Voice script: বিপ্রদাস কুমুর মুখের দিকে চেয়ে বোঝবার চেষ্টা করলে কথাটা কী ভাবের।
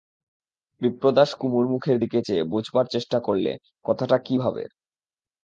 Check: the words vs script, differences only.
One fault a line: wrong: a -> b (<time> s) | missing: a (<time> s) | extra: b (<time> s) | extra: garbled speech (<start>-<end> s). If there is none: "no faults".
no faults